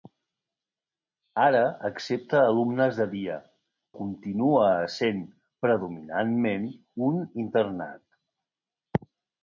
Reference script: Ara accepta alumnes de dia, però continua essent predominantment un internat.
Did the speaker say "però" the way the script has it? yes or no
no